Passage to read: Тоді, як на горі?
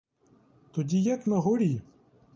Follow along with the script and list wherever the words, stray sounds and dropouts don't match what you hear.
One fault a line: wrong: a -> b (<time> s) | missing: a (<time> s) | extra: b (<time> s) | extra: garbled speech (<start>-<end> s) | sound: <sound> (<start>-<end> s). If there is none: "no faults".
no faults